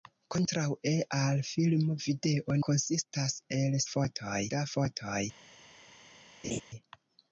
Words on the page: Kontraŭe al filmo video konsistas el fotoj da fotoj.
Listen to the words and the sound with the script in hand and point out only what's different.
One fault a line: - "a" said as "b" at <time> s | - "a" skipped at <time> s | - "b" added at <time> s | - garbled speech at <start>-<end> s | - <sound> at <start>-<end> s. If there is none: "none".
- laugh at 6.4-6.6 s